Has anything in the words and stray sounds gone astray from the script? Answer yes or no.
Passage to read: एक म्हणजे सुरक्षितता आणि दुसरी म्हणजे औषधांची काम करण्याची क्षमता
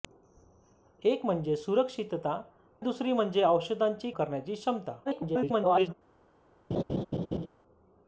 yes